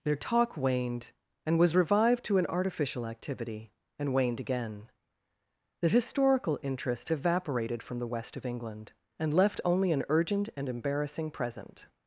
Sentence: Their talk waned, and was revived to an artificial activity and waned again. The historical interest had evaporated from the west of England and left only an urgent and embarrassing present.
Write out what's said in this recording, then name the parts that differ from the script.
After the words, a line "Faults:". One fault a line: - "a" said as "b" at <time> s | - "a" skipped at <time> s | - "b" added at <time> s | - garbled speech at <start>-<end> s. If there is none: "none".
Their talk waned, and was revived to an artificial activity and waned again. The historical interest evaporated from the west of England and left only an urgent and embarrassing present.
Faults:
- "had" skipped at 7.1 s